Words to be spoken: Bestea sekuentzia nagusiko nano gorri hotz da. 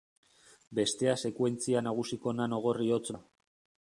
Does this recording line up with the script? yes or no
yes